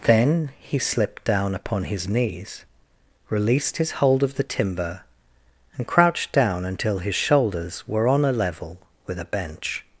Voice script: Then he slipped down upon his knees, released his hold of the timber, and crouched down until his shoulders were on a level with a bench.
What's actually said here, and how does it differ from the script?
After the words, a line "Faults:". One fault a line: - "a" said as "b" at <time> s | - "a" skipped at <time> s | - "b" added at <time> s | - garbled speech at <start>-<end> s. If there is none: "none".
Then he slipped down upon his knees, released his hold of the timber, and crouched down until his shoulders were on a level with a bench.
Faults:
none